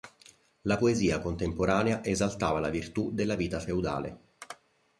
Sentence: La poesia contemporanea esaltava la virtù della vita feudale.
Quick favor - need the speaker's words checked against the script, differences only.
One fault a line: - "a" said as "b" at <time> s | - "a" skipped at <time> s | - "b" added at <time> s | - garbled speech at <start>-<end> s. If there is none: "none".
none